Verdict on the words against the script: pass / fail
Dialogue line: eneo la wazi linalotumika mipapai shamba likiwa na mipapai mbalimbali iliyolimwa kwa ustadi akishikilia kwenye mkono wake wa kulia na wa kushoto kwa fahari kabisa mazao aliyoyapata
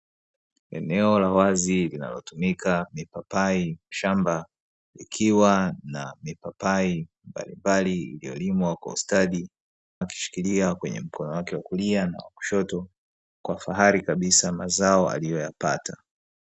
pass